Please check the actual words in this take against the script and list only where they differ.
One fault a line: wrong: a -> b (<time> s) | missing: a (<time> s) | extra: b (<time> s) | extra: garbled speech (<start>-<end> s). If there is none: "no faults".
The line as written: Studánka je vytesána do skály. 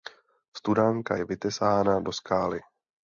no faults